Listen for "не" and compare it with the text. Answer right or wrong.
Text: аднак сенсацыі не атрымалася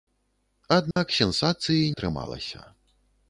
wrong